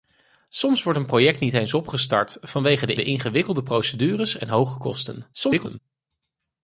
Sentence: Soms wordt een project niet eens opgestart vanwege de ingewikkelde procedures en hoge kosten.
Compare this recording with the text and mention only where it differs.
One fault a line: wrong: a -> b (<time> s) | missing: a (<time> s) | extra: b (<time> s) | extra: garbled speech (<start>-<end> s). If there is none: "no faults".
extra: de (2.9 s)
extra: garbled speech (5.3-5.8 s)